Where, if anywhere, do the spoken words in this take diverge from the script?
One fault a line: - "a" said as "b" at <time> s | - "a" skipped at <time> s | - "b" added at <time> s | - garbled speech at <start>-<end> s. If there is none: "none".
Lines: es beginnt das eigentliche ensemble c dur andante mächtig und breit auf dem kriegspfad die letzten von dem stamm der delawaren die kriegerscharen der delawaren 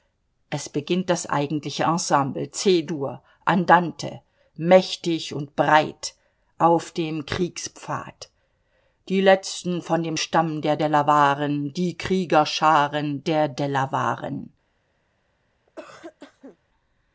none